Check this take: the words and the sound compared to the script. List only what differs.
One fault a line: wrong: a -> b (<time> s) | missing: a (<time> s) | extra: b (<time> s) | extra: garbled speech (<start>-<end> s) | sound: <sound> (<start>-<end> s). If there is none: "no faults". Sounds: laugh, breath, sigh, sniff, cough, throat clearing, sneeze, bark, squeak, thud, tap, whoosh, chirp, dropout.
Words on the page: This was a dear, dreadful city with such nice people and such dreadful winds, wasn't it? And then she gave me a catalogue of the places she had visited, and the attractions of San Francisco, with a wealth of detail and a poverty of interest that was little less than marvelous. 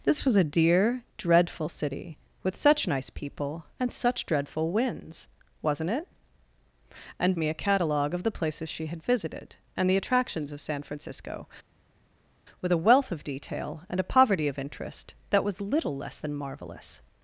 missing: then she gave (7.3 s)